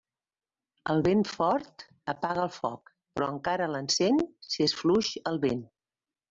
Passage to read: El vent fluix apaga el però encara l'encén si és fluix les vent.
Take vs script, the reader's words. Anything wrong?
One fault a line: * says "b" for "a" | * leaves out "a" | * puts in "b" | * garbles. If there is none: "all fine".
* says "fort" for "fluix"
* puts in "foc"
* says "el" for "les"